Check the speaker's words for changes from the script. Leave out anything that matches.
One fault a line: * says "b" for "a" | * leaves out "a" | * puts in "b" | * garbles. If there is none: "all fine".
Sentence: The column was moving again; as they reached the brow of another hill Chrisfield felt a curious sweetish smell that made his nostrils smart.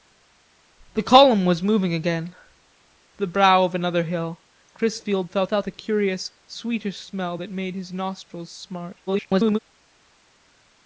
* leaves out "as they reached"
* puts in "felt"
* garbles